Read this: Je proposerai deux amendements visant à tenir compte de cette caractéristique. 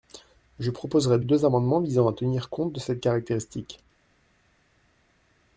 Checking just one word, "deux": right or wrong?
right